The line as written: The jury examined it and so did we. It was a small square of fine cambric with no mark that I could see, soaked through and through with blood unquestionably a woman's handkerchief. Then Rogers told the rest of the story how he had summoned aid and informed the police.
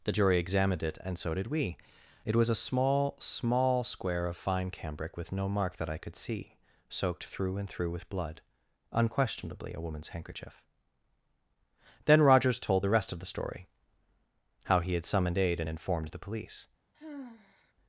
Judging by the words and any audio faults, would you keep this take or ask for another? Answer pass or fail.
fail